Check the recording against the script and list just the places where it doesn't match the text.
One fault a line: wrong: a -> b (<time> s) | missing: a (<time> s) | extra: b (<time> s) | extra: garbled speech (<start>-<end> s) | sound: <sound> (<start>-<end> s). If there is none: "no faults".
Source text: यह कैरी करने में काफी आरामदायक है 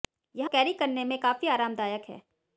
no faults